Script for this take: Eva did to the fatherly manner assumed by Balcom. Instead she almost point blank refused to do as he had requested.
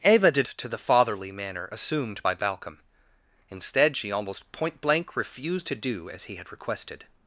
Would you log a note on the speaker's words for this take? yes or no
no